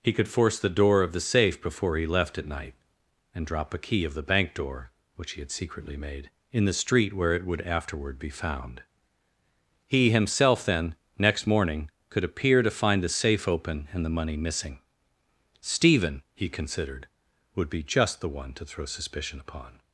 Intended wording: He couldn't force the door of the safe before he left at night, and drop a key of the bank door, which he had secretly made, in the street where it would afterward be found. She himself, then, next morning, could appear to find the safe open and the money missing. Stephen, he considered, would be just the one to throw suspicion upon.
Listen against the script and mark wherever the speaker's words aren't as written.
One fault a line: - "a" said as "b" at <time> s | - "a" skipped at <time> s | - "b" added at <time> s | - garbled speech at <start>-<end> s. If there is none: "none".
- "couldn't" said as "could" at 0.1 s
- "She" said as "He" at 9.9 s